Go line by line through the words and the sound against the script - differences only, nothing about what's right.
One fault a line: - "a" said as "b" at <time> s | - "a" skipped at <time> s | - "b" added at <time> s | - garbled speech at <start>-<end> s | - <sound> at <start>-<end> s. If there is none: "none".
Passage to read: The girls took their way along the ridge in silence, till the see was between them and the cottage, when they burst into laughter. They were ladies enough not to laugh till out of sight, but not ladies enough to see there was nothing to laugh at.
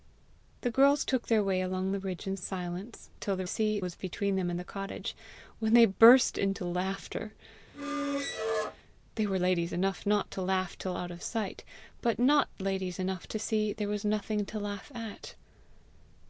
- squeak at 7.7-8.8 s